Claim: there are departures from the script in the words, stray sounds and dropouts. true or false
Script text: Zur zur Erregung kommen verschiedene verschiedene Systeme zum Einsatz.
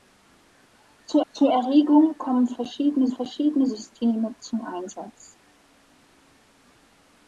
false